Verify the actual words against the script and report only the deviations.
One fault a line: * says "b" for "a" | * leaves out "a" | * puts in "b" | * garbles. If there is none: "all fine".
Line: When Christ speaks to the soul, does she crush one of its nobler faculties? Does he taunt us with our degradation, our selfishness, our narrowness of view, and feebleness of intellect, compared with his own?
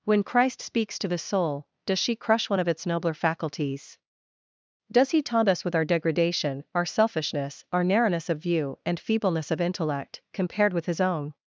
all fine